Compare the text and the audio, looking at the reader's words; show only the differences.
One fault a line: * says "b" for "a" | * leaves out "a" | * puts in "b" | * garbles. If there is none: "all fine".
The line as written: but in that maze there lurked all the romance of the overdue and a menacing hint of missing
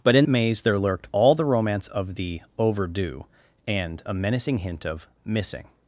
* leaves out "that"